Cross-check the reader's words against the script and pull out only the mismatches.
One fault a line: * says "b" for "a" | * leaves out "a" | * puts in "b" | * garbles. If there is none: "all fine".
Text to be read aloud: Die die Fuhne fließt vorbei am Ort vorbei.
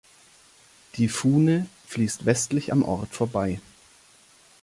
* leaves out "die"
* says "westlich" for "vorbei"